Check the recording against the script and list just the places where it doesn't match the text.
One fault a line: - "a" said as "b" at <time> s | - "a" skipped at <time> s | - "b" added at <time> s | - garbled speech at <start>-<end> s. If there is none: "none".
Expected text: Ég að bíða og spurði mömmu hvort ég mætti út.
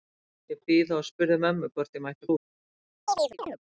none